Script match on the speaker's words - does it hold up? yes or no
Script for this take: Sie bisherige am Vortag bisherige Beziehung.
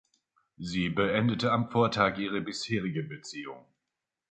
no